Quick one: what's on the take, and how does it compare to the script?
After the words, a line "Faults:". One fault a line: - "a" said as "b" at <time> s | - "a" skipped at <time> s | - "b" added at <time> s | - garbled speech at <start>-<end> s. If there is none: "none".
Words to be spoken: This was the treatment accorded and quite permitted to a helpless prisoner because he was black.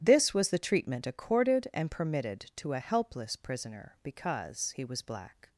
This was the treatment accorded and permitted to a helpless prisoner because he was black.
Faults:
- "quite" skipped at 1.9 s